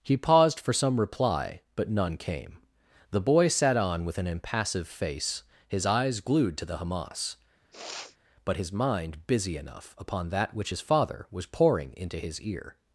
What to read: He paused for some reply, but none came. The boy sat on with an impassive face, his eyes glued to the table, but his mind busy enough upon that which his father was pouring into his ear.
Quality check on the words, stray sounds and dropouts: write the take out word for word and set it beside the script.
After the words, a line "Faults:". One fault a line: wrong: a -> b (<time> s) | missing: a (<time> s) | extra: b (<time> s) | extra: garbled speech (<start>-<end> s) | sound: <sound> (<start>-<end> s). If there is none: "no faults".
He paused for some reply, but none came. The boy sat on with an impassive face, his eyes glued to the hamas, but his mind busy enough upon that which his father was pouring into his ear.
Faults:
wrong: table -> hamas (6.8 s)
sound: sniff (7.7-8.2 s)